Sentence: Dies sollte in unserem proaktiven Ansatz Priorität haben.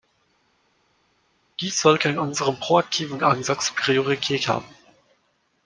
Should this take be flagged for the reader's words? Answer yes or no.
no